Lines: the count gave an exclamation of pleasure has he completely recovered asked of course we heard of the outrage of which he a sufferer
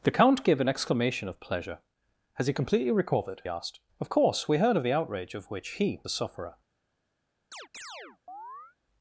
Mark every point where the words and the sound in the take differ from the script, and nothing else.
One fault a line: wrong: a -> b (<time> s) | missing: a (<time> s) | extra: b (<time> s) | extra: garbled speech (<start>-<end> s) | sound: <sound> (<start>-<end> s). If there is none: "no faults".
sound: chirp (7.5-8.8 s)